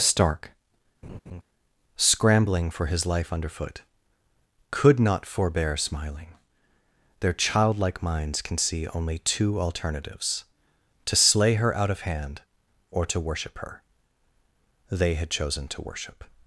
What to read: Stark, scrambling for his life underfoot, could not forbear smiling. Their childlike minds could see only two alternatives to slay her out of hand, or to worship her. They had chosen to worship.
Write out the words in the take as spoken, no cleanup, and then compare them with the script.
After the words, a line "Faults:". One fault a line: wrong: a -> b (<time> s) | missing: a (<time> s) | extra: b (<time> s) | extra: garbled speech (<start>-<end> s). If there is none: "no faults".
Stark, scrambling for his life underfoot, could not forbear smiling. Their childlike minds can see only two alternatives to slay her out of hand, or to worship her. They had chosen to worship.
Faults:
wrong: could -> can (8.4 s)